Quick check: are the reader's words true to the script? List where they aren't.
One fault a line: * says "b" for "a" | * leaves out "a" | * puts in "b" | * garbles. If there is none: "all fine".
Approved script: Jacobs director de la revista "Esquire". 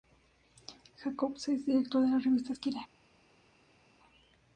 * puts in "es"